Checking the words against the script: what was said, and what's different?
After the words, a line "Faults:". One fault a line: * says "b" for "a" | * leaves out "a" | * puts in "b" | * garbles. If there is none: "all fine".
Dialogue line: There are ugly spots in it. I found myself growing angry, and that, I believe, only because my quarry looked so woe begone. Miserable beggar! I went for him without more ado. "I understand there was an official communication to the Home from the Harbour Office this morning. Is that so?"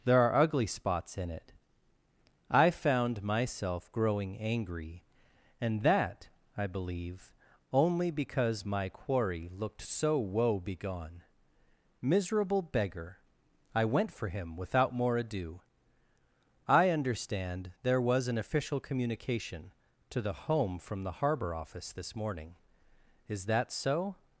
There are ugly spots in it. I found myself growing angry, and that, I believe, only because my quarry looked so woe begone. Miserable beggar! I went for him without more ado. "I understand there was an official communication to the Home from the Harbour Office this morning. Is that so?"
Faults:
all fine